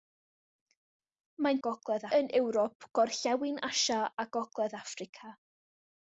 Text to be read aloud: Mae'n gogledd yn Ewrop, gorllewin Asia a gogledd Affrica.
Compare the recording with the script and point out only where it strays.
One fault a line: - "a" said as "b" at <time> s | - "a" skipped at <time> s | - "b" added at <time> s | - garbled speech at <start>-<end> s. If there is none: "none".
none